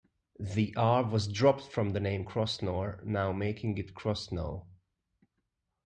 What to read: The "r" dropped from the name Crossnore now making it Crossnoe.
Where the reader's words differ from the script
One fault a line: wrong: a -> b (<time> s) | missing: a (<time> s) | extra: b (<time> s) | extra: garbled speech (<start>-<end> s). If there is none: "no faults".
extra: was (1.1 s)